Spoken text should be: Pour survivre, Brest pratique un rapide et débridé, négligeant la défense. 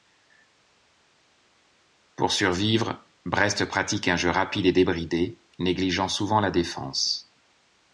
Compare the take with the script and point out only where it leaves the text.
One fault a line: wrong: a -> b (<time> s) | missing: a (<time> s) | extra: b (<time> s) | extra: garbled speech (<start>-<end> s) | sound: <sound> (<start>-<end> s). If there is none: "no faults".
extra: jeu (4.2 s)
extra: souvent (6.1 s)